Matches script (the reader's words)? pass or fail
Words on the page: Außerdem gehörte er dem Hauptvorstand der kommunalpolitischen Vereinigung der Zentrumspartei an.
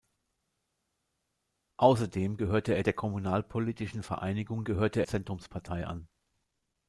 fail